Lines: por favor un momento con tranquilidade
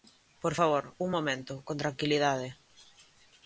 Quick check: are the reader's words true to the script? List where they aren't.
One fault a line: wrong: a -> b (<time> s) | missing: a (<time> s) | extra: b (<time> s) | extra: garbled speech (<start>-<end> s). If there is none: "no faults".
no faults